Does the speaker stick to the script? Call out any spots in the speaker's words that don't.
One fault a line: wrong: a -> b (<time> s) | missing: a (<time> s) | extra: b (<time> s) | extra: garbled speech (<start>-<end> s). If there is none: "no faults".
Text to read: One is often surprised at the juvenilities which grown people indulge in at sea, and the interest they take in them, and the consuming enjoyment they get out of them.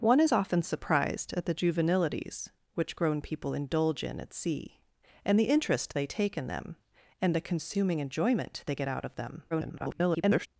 extra: garbled speech (9.5-10.5 s)